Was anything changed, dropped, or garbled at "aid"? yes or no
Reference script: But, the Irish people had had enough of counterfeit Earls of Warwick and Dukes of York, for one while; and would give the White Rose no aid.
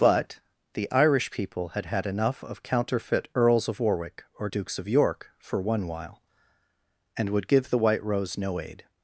no